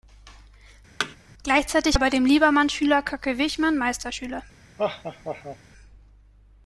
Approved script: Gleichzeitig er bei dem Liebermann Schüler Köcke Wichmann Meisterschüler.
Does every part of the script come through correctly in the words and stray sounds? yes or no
no